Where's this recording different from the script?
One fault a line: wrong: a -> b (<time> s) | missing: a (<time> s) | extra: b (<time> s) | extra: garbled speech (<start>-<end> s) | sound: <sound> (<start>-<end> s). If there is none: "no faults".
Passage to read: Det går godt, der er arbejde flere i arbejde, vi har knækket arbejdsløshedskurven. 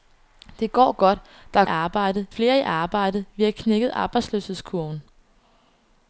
no faults